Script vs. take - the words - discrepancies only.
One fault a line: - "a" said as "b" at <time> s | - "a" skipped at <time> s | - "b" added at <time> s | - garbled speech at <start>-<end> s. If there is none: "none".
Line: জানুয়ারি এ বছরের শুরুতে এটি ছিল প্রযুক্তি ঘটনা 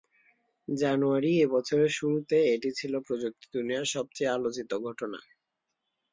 - "দুনিয়ার সবচেয়ে আলোচিত" added at 3.5 s